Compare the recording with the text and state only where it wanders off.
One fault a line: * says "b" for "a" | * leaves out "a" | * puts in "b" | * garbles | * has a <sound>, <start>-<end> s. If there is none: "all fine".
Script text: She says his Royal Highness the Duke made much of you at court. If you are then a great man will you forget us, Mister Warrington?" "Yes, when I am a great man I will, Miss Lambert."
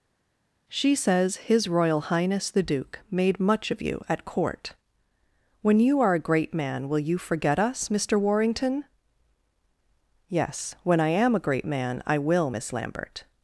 * says "When" for "If"
* leaves out "then"